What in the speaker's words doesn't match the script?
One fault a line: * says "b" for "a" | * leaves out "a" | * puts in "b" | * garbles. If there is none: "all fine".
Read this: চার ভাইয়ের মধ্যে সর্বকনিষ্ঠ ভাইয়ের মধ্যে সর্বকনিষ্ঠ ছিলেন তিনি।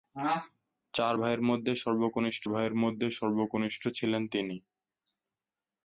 all fine